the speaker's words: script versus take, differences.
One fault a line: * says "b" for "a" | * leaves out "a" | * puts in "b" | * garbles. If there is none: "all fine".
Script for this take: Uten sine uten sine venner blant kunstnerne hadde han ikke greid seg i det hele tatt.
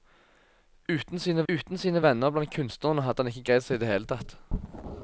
all fine